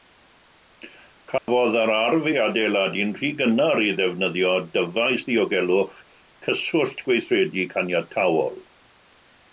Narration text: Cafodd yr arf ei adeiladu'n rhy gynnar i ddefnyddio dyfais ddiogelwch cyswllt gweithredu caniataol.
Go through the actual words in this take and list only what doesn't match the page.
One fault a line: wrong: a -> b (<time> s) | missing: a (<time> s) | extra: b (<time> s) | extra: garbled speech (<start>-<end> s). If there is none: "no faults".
no faults